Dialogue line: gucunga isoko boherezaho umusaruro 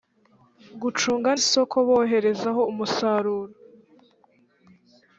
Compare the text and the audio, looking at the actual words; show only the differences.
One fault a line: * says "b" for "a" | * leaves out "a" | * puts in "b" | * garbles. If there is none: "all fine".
all fine